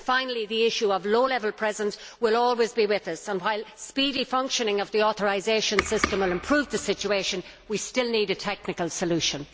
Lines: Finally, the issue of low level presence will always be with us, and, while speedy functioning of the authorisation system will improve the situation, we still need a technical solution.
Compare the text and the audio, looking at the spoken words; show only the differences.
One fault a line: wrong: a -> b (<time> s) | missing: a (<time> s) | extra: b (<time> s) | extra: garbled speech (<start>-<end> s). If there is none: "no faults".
no faults